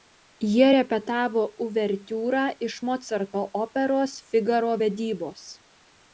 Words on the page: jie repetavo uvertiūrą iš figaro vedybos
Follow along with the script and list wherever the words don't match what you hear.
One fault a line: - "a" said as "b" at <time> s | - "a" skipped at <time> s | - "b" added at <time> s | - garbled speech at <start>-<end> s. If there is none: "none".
- "mocarto operos" added at 2.9 s